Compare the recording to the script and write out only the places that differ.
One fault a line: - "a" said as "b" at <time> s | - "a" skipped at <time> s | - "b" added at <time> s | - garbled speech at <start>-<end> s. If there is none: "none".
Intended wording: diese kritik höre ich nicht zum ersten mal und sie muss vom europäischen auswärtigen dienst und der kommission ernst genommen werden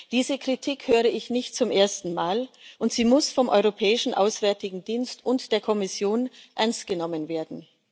none